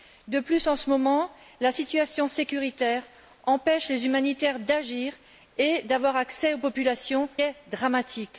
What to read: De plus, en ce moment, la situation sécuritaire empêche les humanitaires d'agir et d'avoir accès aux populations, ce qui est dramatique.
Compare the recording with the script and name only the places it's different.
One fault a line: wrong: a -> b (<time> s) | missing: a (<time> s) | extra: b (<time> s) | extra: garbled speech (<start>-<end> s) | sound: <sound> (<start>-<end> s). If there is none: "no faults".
missing: ce qui (7.3 s)